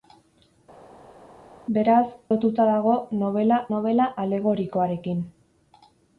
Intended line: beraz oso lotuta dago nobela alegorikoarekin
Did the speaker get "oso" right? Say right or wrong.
wrong